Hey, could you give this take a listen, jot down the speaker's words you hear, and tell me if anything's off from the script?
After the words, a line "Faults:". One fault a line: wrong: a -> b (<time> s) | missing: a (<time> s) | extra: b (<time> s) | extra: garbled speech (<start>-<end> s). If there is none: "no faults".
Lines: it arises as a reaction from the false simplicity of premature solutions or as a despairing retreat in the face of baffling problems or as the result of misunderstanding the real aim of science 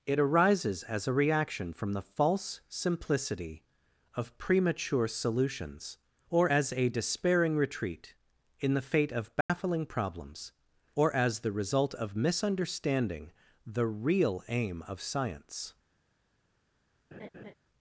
it arises as a reaction from the false simplicity of premature solutions or as a despairing retreat in the fate of baffling problems or as the result of misunderstanding the real aim of science
Faults:
wrong: face -> fate (8.8 s)